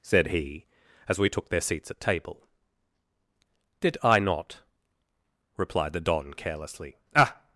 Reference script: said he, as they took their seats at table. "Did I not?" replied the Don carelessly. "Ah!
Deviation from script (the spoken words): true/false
true